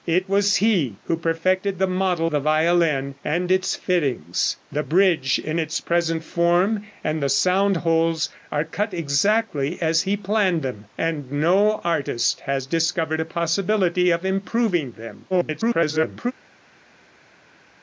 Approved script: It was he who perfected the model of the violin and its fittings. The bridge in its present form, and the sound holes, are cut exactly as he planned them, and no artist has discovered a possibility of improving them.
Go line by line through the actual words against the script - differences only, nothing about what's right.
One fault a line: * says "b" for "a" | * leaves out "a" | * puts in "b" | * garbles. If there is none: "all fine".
* leaves out "of"
* garbles